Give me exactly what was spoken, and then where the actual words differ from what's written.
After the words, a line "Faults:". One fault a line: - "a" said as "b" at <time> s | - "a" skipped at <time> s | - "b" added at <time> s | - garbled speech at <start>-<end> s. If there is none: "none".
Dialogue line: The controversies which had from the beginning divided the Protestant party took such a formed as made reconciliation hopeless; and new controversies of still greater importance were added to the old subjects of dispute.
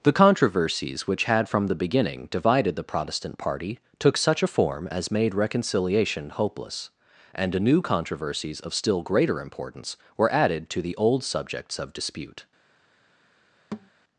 The controversies which had from the beginning divided the Protestant party took such a form as made reconciliation hopeless; and new controversies of still greater importance were added to the old subjects of dispute.
Faults:
- "formed" said as "form" at 4.5 s